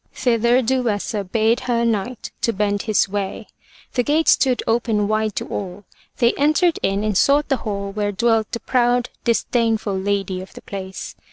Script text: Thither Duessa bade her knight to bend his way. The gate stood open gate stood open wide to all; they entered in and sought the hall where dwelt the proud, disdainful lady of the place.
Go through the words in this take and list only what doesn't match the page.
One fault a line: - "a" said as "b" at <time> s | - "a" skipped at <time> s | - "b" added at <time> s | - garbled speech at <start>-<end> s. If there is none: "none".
- "gate stood open" skipped at 5.1 s